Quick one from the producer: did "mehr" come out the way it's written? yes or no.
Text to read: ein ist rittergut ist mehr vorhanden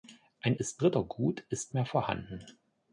yes